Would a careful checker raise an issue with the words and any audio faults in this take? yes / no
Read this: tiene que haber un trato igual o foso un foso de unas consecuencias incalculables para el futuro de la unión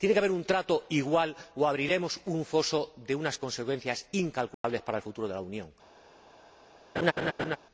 yes